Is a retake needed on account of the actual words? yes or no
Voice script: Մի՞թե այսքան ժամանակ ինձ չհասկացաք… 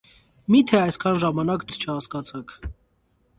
no